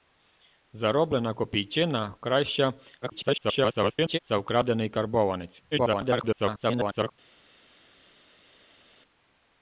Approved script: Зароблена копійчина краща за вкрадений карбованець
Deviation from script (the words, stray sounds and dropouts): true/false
true